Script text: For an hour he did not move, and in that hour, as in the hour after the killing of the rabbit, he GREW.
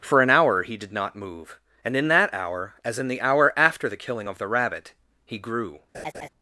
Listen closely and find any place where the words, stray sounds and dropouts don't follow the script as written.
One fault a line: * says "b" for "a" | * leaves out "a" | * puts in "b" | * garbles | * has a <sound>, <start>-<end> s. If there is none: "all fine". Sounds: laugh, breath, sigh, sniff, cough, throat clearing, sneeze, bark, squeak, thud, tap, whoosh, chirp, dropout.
* has a laugh, 5.9-6.3 s